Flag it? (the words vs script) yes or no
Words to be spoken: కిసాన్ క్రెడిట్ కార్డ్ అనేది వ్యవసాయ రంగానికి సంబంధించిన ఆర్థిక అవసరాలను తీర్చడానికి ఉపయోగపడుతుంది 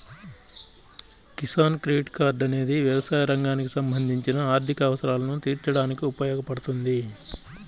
no